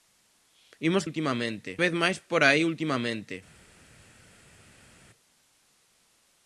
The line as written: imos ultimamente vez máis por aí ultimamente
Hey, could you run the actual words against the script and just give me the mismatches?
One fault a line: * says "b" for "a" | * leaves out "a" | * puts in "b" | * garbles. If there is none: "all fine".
all fine